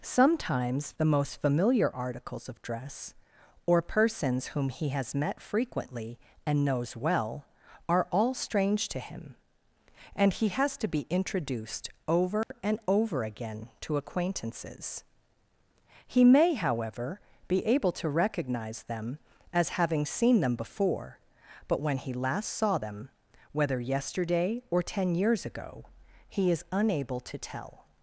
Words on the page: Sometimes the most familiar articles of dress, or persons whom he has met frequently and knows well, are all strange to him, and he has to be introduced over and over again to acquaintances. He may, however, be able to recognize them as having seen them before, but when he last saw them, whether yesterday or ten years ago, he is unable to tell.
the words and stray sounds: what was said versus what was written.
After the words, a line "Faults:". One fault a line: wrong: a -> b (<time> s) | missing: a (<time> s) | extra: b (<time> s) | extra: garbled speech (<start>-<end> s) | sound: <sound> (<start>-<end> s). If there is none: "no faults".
Sometimes the most familiar articles of dress, or persons whom he has met frequently and knows well, are all strange to him, and he has to be introduced over and over again to acquaintances. He may, however, be able to recognize them as having seen them before, but when he last saw them, whether yesterday or ten years ago, he is unable to tell.
Faults:
sound: dropout (12.4-12.5 s)